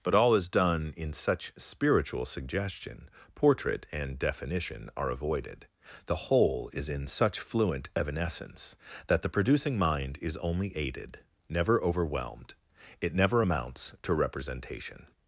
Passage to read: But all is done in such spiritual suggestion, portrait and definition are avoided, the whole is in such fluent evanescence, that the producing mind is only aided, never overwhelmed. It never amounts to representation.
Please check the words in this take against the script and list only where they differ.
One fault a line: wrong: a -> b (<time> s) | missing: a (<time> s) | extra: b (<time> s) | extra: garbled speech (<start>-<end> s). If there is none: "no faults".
no faults